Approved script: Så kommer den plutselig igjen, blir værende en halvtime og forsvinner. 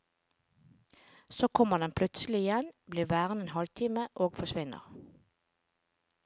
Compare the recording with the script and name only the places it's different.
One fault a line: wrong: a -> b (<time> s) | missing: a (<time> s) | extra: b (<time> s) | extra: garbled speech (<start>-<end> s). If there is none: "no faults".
no faults